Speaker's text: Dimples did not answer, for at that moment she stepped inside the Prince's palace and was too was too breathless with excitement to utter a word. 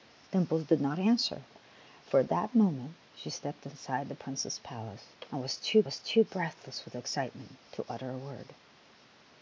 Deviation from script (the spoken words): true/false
false